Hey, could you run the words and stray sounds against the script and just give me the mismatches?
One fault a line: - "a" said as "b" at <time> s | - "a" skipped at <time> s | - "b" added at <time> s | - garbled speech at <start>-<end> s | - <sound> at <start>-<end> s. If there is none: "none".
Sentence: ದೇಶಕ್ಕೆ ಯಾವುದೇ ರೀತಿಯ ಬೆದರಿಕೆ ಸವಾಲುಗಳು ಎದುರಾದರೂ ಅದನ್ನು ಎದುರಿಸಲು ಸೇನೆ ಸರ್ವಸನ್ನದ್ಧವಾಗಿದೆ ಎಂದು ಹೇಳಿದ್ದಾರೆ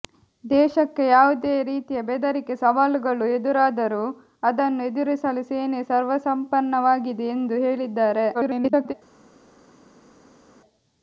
- garbled speech at 8.3-8.9 s